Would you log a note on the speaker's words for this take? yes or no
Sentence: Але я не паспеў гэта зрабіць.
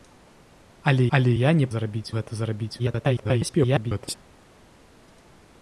yes